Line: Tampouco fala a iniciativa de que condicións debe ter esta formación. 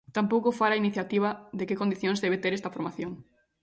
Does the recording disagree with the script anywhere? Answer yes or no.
no